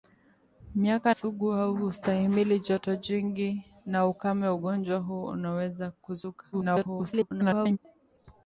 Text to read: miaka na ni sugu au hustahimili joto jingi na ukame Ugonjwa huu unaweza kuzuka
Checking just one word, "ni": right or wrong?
wrong